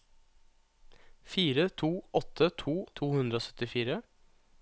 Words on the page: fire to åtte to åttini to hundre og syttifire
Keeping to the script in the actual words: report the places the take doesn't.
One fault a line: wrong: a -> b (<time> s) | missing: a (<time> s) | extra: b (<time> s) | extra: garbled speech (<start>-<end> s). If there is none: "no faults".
missing: åttini (2.8 s)